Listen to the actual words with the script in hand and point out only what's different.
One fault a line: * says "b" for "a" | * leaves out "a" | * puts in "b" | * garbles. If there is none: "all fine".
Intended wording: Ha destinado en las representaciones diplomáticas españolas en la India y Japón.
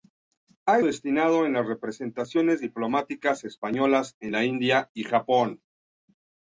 all fine